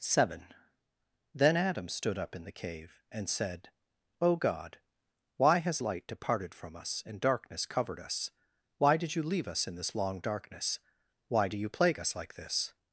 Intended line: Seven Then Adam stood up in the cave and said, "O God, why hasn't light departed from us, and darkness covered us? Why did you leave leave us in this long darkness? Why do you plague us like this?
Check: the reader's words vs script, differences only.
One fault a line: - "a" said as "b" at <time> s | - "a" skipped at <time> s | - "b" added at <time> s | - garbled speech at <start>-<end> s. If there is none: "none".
- "hasn't" said as "has" at 5.6 s
- "leave" skipped at 9.5 s